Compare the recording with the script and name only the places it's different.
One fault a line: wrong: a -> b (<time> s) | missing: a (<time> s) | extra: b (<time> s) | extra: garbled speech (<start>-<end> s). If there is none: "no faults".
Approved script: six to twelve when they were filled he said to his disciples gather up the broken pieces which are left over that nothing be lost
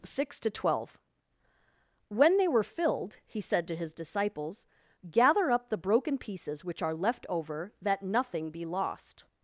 no faults